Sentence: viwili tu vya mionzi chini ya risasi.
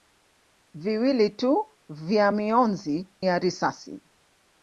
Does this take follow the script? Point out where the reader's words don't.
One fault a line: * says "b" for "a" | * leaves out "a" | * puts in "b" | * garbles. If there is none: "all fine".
* leaves out "chini"